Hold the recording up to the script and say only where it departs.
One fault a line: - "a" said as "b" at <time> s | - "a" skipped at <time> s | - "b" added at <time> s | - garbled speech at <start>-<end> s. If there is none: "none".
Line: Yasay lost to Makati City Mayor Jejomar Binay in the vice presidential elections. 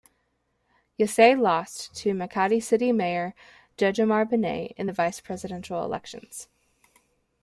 none